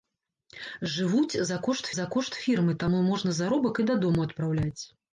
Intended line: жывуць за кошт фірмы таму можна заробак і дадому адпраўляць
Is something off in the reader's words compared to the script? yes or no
yes